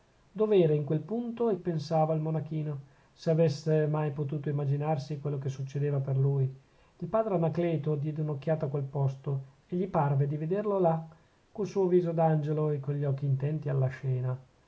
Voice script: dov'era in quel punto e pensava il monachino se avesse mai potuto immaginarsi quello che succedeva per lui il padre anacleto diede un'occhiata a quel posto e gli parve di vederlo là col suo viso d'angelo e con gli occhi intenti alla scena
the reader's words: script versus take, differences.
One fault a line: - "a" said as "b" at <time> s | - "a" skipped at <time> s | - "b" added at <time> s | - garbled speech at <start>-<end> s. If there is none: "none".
none